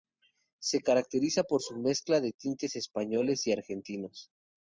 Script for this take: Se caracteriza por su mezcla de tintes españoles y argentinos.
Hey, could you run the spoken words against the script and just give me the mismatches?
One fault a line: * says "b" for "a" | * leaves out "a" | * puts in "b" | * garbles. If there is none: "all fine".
all fine